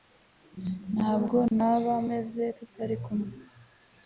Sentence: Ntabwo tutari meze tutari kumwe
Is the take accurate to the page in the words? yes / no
no